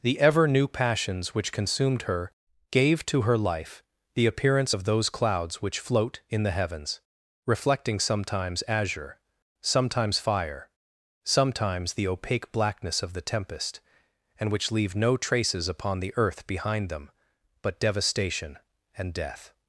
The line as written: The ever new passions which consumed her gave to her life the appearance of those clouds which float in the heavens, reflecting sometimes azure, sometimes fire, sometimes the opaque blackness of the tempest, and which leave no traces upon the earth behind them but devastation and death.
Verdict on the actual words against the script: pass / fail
pass